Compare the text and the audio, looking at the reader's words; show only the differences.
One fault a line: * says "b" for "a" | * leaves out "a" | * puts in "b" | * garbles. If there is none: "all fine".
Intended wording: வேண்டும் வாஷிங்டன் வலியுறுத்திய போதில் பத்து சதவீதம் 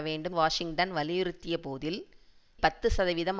all fine